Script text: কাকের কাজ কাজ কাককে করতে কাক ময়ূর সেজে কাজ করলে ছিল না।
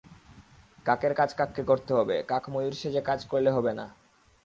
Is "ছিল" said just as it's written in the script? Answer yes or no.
no